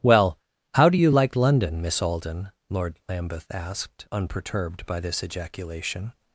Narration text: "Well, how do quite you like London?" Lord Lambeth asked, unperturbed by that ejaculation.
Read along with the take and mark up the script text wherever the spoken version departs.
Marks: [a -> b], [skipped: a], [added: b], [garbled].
"Well, how do [skipped: quite] you like London?" [added: Miss Alden] Lord Lambeth asked, unperturbed by [that -> this] ejaculation.